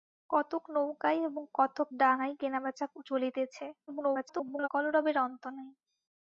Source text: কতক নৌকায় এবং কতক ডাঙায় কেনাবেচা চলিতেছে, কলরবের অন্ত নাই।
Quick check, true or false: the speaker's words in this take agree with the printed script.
false